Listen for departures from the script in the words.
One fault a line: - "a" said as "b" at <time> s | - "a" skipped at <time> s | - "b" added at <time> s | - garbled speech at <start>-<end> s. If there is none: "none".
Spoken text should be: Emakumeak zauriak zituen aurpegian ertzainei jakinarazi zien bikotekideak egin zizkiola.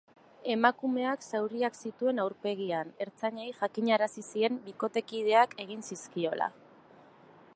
none